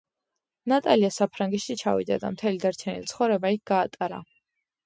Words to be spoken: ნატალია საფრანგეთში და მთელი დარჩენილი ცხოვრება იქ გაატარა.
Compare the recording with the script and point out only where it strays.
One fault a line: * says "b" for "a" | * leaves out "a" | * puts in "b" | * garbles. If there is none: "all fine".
* puts in "ჩავიდა"